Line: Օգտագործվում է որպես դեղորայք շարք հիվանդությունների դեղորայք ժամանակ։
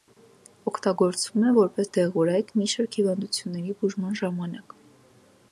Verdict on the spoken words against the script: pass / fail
fail